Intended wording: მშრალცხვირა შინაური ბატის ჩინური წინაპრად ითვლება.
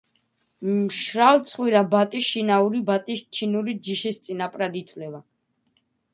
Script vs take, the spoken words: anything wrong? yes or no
yes